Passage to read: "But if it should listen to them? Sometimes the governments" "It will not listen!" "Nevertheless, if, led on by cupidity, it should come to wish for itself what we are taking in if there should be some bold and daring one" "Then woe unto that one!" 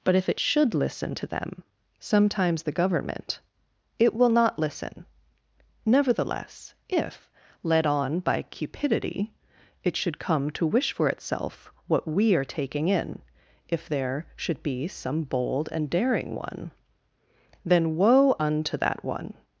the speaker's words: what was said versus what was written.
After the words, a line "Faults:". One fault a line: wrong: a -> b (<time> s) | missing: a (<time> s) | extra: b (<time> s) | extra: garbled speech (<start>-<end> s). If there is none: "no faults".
"But if it should listen to them? Sometimes the government" "It will not listen!" "Nevertheless, if, led on by cupidity, it should come to wish for itself what we are taking in if there should be some bold and daring one" "Then woe unto that one!"
Faults:
wrong: governments -> government (2.7 s)